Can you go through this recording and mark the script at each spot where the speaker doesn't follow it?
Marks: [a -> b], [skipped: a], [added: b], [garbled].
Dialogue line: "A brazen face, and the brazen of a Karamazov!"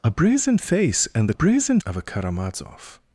"A brazen face, and the brazen of a Karamazov!"